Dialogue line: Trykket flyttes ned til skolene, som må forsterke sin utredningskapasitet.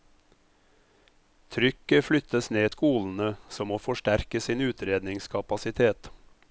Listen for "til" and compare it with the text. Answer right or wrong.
wrong